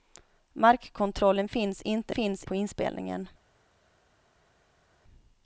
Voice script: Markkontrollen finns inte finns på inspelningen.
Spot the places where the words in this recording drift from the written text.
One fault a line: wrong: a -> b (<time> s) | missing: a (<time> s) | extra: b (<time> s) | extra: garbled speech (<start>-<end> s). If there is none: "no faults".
no faults